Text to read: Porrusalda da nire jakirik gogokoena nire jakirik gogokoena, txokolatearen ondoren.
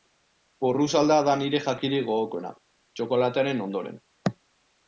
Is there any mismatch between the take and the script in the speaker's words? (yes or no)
yes